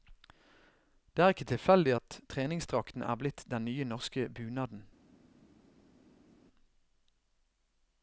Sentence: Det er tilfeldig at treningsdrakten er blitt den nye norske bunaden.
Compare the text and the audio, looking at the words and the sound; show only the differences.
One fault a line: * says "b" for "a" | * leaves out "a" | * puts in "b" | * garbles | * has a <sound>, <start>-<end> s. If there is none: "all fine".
* puts in "ikke"